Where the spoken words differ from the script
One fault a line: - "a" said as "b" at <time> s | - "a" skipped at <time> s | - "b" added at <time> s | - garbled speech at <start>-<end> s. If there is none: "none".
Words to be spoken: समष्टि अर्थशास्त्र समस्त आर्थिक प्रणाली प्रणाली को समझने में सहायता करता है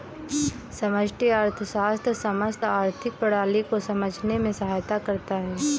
- "प्रणाली" skipped at 3.6 s